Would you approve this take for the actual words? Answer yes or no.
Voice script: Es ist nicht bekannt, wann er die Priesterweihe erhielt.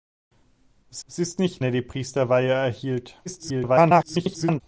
no